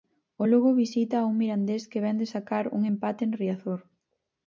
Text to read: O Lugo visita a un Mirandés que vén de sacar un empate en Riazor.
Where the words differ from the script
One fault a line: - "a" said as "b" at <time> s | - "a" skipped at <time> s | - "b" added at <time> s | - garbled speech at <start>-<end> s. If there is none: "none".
none